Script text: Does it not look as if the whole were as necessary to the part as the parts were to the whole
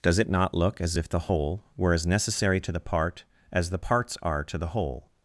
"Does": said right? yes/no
yes